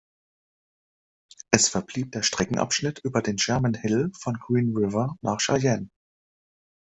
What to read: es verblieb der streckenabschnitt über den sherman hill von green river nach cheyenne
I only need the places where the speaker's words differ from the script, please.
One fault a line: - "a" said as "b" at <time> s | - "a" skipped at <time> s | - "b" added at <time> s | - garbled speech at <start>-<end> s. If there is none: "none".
none